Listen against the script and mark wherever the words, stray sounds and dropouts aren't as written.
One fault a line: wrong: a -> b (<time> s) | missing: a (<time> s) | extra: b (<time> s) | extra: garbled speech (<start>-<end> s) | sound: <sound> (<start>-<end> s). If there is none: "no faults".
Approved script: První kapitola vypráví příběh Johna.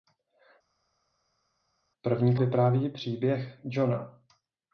missing: kapitola (2.4 s)